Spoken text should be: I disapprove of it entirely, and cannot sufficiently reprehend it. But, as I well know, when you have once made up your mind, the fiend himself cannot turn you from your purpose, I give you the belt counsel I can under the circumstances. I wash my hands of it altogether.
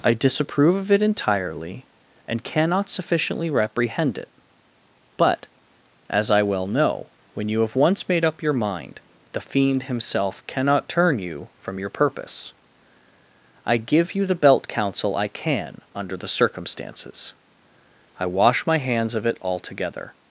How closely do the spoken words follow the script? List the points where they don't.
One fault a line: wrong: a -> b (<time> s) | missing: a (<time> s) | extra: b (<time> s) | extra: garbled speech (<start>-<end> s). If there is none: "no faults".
no faults